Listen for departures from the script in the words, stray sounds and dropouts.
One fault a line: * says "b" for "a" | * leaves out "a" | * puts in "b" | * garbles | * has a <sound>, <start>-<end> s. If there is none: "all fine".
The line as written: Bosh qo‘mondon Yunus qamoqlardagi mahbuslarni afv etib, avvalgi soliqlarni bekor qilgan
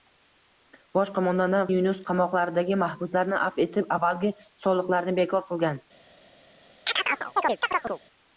* has a chirp, 6.9-8.0 s